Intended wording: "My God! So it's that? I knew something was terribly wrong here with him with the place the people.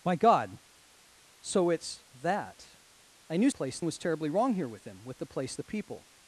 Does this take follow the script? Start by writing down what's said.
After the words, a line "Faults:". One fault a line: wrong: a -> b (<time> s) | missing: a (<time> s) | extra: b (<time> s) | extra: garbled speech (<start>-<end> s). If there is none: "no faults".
"My God! So it's that? I knew place was terribly wrong here with him with the place the people.
Faults:
wrong: something -> place (3.5 s)